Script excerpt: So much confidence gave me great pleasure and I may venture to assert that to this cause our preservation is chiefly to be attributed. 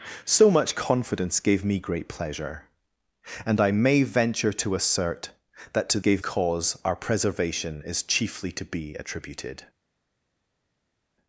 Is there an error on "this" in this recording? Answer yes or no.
yes